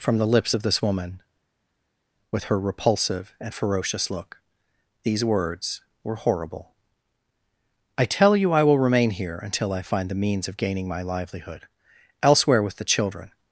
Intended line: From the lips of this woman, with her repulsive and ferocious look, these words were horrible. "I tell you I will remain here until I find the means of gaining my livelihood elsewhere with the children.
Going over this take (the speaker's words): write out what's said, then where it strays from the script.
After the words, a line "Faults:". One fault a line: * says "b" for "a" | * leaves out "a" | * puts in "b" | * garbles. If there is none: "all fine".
From the lips of this woman, with her repulsive and ferocious look, these words were horrible. "I tell you I will remain here until I find the means of gaining my livelihood elsewhere with the children.
Faults:
all fine